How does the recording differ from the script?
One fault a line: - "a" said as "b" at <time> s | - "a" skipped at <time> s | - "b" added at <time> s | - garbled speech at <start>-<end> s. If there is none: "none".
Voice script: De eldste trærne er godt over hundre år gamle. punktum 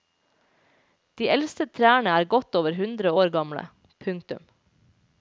none